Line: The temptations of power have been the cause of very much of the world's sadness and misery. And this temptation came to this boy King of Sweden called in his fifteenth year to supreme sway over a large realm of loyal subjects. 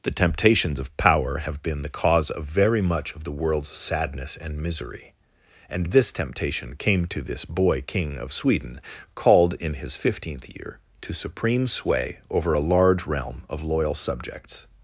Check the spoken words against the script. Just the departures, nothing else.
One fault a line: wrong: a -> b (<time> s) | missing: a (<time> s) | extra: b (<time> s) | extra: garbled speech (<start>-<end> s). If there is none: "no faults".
no faults